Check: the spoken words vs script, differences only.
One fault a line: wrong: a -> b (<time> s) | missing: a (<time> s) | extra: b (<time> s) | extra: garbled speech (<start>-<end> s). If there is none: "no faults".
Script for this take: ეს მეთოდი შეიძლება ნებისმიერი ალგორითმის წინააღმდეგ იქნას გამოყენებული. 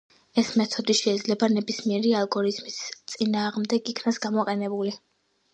no faults